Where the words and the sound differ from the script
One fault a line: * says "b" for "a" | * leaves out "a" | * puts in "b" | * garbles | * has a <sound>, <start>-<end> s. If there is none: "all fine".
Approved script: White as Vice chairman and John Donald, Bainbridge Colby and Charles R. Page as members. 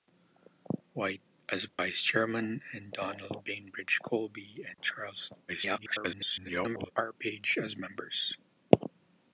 * has a dropout, 1.7-1.8 s
* leaves out "John"
* has a dropout, 4.7-4.8 s
* garbles